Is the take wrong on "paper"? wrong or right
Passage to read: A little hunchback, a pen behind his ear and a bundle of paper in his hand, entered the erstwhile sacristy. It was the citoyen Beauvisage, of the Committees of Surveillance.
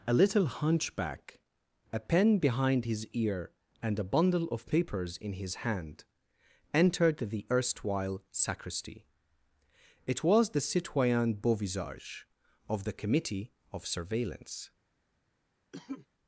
wrong